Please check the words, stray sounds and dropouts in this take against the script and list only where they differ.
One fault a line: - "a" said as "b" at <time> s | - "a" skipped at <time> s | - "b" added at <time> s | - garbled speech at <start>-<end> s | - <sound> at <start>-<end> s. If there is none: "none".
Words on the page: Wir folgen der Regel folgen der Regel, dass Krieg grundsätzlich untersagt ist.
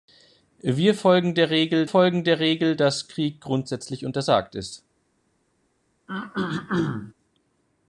- throat clearing at 6.1-7.1 s